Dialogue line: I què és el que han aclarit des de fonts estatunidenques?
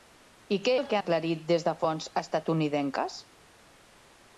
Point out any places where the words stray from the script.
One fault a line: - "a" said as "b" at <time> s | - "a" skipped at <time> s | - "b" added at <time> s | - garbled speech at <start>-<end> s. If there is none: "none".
- "és" skipped at 0.7 s
- "han" skipped at 1.0 s